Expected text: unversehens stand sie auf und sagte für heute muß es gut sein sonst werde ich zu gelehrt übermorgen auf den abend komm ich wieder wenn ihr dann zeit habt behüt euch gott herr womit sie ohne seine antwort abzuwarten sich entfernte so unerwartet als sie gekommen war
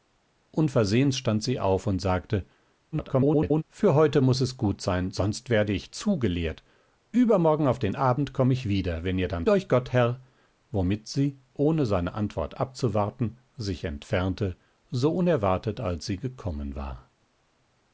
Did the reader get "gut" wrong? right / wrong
right